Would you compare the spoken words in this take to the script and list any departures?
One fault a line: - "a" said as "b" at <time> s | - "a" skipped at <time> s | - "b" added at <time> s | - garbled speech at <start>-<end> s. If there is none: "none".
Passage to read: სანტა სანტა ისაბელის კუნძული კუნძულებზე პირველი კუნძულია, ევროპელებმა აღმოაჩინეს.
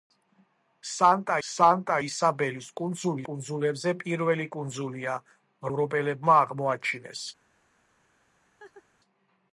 none